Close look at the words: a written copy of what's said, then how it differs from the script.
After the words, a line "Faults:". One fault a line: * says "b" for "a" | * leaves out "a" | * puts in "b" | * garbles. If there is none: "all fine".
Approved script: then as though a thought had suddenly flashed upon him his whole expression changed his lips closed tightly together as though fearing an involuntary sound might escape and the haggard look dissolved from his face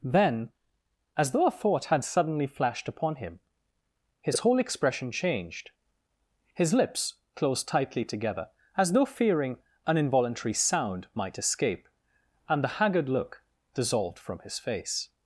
then as though a thought had suddenly flashed upon him his whole expression changed his lips closed tightly together as though fearing an involuntary sound might escape and the haggard look dissolved from his face
Faults:
all fine